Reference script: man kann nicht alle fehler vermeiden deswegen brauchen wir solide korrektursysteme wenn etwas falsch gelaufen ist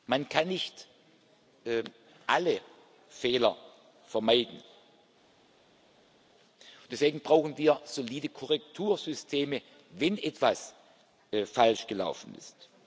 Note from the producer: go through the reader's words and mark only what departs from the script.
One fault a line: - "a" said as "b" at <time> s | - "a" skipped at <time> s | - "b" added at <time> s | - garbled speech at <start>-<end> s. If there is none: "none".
none